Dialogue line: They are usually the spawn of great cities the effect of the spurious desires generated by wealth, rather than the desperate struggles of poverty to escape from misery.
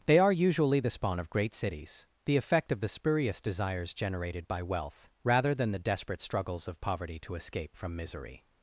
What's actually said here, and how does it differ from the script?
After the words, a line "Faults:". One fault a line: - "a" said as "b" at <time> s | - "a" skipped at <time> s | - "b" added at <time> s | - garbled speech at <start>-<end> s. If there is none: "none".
They are usually the spawn of great cities the effect of the spurious desires generated by wealth, rather than the desperate struggles of poverty to escape from misery.
Faults:
none